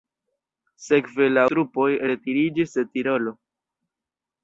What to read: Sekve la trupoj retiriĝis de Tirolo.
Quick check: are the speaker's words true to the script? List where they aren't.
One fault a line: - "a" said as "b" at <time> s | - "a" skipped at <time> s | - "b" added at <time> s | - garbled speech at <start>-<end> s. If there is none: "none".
none